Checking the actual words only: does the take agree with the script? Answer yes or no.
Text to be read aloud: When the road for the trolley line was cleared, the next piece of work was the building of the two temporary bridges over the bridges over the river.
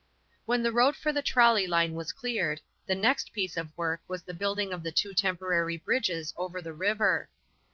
no